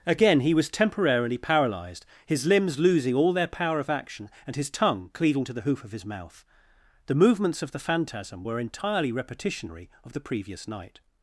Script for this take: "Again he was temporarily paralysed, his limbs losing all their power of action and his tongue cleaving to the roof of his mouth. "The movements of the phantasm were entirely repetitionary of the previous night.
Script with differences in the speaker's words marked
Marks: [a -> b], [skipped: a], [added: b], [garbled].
"Again he was temporarily paralysed, his limbs losing all their power of action and his tongue cleaving to the [roof -> hoof] of his mouth. "The movements of the phantasm were entirely repetitionary of the previous night.